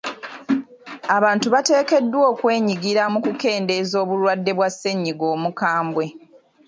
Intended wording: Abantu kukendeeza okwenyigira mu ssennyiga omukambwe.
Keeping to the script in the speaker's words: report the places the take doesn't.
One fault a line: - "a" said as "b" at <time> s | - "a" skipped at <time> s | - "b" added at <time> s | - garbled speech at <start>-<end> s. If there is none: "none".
- "kukendeeza" said as "bateekeddwa" at 1.5 s
- "kukendeeza obulwadde bwa" added at 3.2 s